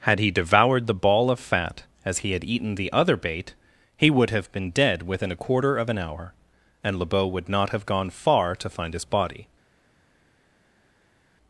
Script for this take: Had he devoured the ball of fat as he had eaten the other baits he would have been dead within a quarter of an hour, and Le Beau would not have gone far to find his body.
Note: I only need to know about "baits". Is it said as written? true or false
false